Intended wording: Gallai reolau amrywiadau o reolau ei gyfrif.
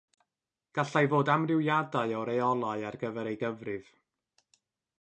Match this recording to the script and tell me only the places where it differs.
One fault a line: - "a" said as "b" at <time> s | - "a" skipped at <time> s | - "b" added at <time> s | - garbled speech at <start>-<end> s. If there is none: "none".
- "reolau" said as "fod" at 1.1 s
- "ar gyfer" added at 2.9 s